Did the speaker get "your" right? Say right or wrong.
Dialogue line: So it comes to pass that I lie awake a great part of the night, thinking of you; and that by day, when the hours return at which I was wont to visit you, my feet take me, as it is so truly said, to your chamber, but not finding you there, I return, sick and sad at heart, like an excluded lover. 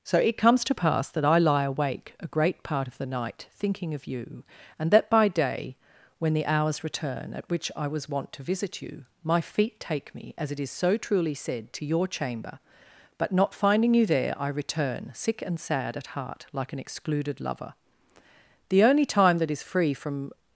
right